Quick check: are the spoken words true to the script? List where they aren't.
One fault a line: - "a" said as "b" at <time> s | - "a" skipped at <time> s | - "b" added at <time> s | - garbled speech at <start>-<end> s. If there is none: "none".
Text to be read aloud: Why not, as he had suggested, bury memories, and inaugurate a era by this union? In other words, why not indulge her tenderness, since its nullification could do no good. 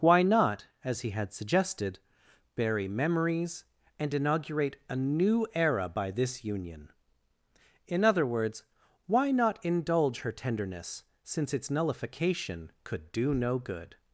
- "new" added at 5.0 s